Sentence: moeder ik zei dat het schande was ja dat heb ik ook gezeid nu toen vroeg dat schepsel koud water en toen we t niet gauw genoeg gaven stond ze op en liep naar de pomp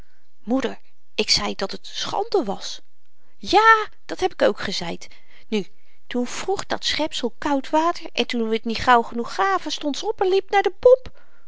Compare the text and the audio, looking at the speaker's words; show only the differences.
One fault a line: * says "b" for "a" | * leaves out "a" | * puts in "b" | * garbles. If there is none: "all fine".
all fine